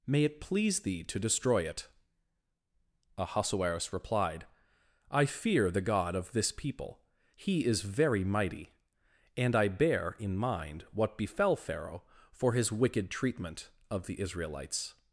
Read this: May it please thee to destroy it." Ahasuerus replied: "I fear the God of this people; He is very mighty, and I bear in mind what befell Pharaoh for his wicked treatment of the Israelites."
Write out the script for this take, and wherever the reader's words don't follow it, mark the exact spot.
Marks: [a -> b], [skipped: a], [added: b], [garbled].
May it please thee to destroy it." Ahasuerus replied: "I fear the God of this people; He is very mighty, and I bear in mind what befell Pharaoh for his wicked treatment of the Israelites."